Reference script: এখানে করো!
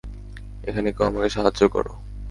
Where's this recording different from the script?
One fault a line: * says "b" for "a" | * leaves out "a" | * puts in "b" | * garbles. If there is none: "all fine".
* puts in "কেউ আমাকে সাহায্য"